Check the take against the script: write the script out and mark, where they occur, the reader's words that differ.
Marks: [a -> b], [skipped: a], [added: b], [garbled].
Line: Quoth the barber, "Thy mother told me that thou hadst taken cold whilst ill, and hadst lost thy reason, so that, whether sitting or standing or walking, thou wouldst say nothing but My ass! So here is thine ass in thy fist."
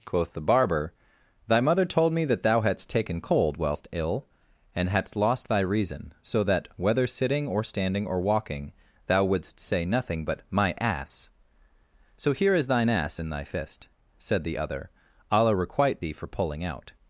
Quoth the barber, "Thy mother told me that thou hadst taken cold whilst ill, and hadst lost thy reason, so that, whether sitting or standing or walking, thou wouldst say nothing but My ass! So here is thine ass in thy fist." [added: Said the other Allah requite thee for pulling out]